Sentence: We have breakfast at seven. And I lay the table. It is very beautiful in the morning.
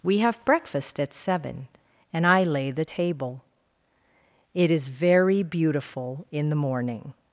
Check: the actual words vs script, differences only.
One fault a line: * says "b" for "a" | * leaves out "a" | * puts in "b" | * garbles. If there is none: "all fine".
all fine